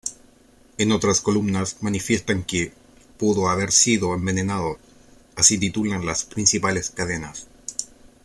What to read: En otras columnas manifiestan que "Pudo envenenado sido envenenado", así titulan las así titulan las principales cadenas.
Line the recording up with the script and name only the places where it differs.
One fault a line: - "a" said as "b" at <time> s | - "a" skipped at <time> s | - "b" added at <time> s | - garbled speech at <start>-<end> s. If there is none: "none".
- "envenenado" said as "haber" at 3.5 s
- "así titulan las" skipped at 6.2 s